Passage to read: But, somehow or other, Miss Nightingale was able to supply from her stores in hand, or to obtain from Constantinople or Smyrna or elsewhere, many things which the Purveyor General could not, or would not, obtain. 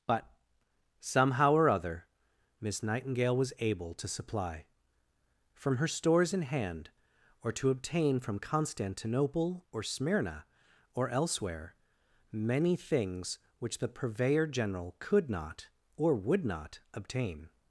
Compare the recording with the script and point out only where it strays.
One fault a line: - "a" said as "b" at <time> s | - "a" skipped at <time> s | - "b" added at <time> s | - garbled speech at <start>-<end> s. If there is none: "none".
none